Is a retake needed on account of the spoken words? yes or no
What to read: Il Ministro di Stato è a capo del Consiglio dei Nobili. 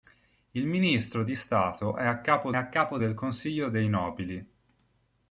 yes